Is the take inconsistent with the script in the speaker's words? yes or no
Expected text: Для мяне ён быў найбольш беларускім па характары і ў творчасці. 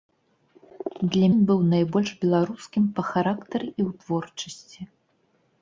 yes